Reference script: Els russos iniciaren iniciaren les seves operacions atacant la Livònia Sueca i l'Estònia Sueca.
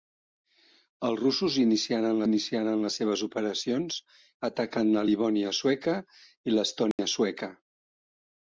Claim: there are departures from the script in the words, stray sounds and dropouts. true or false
true